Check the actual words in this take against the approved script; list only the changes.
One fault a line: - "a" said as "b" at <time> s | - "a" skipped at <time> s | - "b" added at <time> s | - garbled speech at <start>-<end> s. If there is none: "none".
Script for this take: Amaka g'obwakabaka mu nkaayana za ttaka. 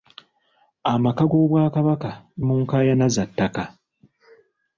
none